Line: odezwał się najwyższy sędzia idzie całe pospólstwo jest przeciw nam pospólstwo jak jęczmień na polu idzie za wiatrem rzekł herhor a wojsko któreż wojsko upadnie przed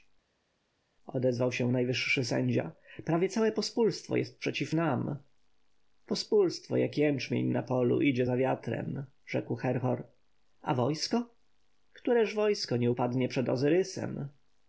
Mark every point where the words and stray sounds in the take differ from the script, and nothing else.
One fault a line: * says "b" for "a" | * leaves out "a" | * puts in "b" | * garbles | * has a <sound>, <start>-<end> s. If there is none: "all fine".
* says "prawie" for "idzie"
* puts in "nie"